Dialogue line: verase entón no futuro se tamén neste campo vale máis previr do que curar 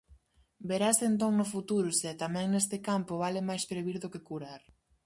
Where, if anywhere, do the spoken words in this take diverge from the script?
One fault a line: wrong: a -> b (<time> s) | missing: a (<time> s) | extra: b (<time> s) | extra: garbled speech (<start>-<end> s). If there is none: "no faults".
no faults